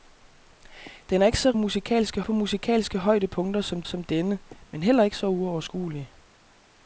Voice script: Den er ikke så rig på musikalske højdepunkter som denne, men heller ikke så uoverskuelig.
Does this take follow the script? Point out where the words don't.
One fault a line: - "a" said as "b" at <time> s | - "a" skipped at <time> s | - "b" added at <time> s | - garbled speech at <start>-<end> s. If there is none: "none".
- "rig" said as "musikalske" at 1.5 s
- "som" added at 3.8 s